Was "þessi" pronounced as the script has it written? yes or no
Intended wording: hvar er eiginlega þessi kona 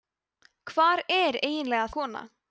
no